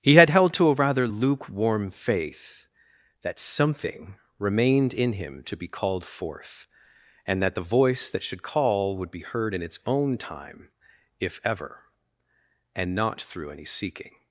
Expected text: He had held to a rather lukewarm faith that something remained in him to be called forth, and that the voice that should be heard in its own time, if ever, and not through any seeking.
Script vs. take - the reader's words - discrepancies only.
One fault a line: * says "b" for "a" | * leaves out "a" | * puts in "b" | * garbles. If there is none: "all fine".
* puts in "call would"